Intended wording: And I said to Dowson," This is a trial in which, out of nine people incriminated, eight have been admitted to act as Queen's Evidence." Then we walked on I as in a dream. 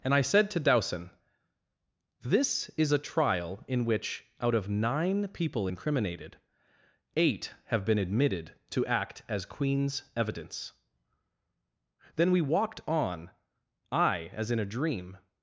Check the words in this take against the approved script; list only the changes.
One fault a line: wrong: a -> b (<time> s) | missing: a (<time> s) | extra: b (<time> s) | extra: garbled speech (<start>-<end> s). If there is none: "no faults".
no faults